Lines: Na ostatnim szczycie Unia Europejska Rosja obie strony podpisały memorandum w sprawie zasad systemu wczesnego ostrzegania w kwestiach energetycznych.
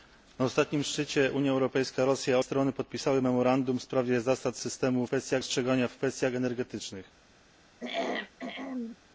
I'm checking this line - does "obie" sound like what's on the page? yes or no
no